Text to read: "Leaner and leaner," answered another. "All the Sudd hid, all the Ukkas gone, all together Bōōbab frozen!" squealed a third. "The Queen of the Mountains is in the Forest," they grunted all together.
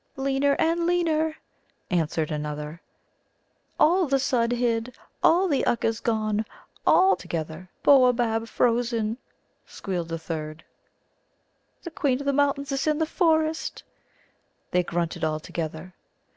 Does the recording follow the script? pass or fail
pass